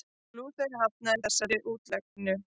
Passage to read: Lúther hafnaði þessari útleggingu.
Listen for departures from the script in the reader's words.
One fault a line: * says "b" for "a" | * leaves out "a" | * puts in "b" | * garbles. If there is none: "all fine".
all fine